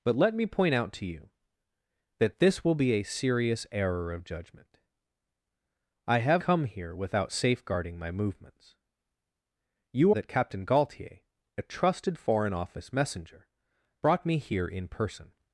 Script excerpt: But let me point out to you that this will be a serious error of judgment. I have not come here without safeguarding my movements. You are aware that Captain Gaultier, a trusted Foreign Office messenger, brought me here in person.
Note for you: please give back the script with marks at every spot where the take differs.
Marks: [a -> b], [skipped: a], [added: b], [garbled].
But let me point out to you that this will be a serious error of judgment. I have [skipped: not] come here without safeguarding my movements. You [skipped: are aware] that Captain Gaultier, a trusted Foreign Office messenger, brought me here in person.